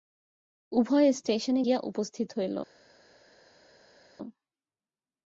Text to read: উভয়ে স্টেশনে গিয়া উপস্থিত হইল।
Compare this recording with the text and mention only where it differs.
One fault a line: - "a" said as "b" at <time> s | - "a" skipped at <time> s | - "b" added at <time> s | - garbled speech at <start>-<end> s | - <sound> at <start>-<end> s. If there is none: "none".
none